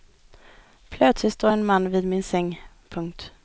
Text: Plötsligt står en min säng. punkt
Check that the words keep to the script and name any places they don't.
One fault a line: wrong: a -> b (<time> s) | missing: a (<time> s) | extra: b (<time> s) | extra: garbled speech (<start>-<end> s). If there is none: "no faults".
extra: man vid (1.7 s)